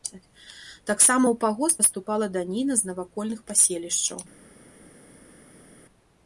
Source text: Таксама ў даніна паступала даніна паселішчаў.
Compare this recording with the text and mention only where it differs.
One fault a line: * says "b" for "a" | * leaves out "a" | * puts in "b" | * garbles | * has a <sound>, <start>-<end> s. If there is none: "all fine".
* says "пагост" for "даніна"
* puts in "з навакольных"